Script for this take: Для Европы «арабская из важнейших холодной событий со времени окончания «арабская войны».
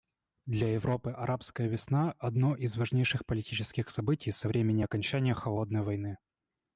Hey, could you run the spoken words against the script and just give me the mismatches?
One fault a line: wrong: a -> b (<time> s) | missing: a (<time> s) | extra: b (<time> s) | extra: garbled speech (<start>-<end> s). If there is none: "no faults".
extra: весна одно (1.7 s)
wrong: холодной -> политических (3.3 s)
wrong: арабская -> холодной (5.3 s)